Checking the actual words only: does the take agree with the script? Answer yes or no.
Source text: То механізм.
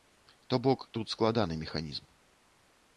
no